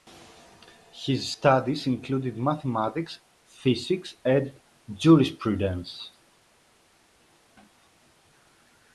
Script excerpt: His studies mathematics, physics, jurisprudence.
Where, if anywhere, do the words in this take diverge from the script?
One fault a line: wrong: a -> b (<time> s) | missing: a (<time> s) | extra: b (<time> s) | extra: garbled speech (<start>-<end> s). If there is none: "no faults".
extra: included (1.9 s)
extra: and (4.2 s)